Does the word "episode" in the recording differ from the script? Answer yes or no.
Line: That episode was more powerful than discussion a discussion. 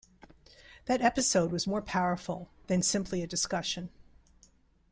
no